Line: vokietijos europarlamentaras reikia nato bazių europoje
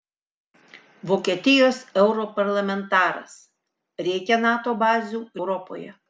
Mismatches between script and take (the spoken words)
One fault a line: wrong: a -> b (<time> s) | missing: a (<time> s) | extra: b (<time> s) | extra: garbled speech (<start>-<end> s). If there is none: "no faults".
no faults